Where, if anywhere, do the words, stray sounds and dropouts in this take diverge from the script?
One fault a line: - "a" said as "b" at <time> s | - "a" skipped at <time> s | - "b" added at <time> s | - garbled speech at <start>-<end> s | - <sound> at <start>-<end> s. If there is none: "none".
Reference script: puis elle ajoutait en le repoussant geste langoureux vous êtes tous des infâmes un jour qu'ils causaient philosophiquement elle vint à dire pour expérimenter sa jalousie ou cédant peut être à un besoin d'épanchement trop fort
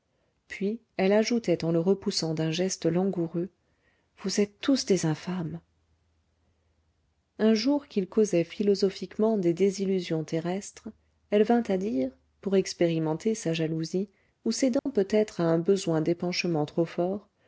- "d'un" added at 2.3 s
- "des désillusions terrestres" added at 9.4 s
- dropout at 14.8-14.9 s